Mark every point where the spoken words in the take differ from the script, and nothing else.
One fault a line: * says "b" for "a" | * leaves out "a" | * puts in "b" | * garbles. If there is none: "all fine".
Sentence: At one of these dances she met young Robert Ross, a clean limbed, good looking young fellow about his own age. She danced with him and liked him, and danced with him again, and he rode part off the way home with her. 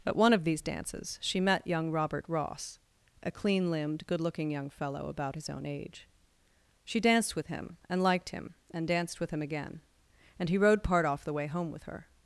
all fine